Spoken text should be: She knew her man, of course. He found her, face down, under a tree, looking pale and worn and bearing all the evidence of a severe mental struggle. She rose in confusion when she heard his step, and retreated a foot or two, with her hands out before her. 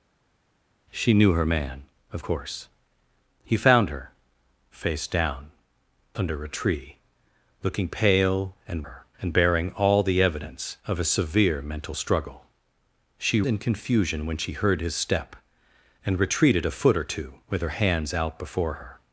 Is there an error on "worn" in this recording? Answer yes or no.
yes